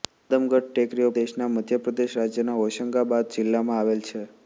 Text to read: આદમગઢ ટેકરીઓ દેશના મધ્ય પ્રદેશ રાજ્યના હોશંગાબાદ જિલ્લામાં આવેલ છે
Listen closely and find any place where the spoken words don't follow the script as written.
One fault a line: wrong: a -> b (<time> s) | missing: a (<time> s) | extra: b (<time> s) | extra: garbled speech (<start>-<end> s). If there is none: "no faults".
no faults